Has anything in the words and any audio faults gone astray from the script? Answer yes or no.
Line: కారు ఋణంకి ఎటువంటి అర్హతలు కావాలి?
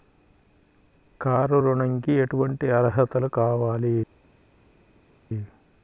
no